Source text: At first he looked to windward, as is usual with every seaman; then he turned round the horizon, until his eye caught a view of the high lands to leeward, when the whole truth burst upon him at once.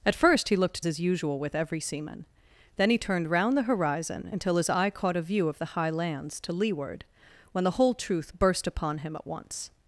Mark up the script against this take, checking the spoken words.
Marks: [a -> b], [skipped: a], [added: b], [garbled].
At first he looked [skipped: to windward, as] is usual with every seaman; then he turned round the horizon, until his eye caught a view of the high lands to leeward, when the whole truth burst upon him at once.